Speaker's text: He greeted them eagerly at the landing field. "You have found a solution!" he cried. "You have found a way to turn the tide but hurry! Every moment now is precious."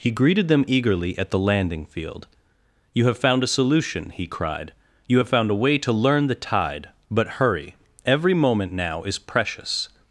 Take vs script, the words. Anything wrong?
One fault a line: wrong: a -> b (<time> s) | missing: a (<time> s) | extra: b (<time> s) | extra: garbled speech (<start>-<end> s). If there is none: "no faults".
wrong: turn -> learn (5.9 s)